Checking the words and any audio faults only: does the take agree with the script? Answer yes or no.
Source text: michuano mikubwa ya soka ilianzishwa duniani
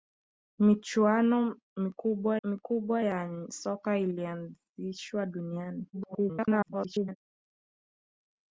no